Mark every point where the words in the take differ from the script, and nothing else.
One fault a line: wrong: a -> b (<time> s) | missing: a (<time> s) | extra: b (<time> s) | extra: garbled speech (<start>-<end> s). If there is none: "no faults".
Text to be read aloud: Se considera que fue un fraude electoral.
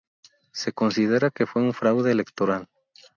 no faults